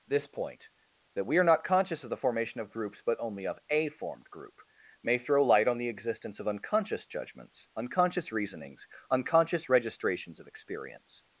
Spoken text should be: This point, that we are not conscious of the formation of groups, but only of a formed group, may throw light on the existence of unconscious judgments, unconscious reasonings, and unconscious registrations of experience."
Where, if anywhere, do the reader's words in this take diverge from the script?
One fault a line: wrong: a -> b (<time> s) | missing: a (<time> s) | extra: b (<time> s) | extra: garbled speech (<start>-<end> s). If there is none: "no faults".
missing: and (8.9 s)